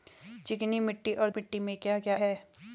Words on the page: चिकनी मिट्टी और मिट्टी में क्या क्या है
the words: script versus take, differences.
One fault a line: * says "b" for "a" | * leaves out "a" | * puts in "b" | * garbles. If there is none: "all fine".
all fine